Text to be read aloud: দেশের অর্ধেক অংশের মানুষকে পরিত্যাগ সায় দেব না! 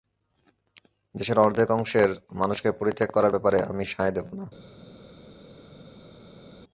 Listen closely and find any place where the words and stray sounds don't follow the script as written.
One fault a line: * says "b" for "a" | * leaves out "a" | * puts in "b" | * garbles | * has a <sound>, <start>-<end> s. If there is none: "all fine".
* puts in "করার ব্যাপারে আমি"